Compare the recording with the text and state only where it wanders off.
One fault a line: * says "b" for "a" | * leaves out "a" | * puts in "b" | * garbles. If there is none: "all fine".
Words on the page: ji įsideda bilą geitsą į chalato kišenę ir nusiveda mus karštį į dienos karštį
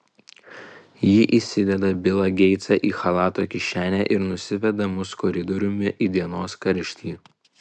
* says "koridoriumi" for "karštį"